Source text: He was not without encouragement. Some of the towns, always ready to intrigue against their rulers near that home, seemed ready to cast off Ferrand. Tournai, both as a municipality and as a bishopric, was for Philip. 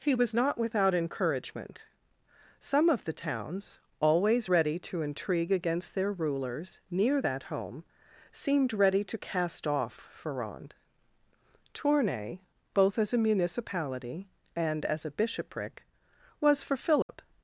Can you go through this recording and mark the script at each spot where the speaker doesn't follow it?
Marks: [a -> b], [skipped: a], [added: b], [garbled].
He was not without encouragement. Some of the towns, always ready to intrigue against their rulers near that home, seemed ready to cast off Ferrand. Tournai, both as a municipality and as a bishopric, was for Philip.